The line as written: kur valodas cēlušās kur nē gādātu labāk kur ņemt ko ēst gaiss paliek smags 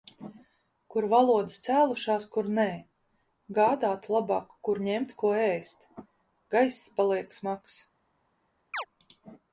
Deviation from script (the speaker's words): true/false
false